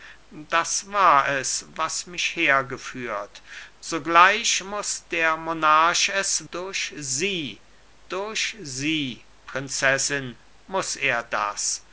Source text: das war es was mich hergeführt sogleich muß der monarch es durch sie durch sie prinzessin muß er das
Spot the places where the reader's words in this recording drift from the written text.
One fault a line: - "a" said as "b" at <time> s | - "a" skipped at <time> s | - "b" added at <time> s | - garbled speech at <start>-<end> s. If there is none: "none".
none